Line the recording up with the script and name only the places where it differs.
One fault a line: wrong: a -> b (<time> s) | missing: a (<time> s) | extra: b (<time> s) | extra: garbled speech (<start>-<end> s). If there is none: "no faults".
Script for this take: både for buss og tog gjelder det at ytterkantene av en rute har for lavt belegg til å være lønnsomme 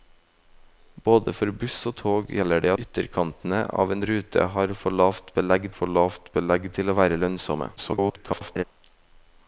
missing: at (2.7 s)
extra: for lavt belegg (5.8 s)
extra: garbled speech (7.8-8.6 s)